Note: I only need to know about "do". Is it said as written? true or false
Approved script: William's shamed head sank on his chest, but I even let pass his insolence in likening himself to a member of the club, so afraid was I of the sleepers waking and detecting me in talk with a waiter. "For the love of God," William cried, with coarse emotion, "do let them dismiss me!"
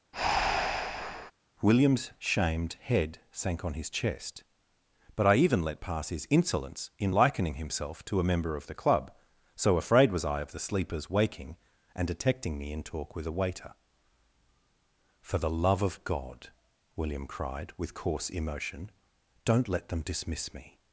false